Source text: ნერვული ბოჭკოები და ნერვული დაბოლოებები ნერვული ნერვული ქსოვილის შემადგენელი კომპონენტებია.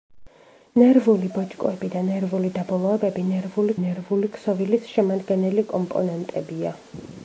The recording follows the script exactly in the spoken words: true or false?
true